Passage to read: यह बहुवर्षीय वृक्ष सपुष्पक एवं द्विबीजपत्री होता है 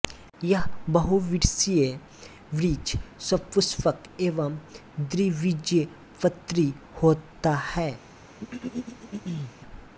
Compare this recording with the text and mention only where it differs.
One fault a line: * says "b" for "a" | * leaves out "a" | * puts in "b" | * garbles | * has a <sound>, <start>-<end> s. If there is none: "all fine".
* has a throat clearing, 8.4-9.5 s